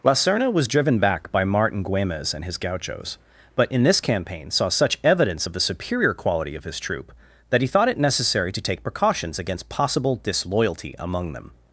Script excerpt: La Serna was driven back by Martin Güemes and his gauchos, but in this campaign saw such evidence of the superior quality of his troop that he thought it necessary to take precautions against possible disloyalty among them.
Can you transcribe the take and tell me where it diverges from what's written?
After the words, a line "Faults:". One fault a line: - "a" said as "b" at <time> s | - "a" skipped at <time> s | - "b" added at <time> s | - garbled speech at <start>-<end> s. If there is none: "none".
La Serna was driven back by Martin Güemes and his gauchos, but in this campaign saw such evidence of the superior quality of his troop that he thought it necessary to take precautions against possible disloyalty among them.
Faults:
none